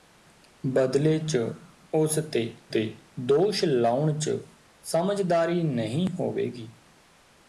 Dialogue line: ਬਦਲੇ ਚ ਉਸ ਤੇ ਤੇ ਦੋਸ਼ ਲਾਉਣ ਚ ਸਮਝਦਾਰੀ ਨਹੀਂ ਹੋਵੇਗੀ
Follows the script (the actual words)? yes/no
yes